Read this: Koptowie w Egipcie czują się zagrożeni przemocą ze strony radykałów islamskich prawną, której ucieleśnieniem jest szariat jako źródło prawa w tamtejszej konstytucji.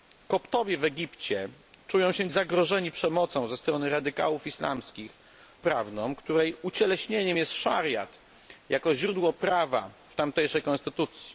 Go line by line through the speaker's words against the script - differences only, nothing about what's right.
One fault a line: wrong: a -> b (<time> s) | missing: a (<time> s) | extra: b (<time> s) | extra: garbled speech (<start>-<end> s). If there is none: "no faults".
no faults